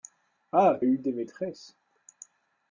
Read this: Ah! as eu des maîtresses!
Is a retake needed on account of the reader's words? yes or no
no